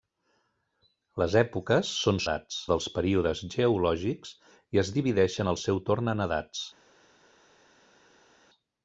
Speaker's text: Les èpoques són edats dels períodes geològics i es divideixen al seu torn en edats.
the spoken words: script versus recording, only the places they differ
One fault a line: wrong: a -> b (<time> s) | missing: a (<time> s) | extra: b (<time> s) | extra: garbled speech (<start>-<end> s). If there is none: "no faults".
no faults